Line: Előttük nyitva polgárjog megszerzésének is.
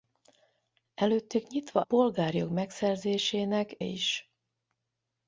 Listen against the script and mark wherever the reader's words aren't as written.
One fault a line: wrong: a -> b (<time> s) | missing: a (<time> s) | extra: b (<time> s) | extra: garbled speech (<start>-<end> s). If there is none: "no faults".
no faults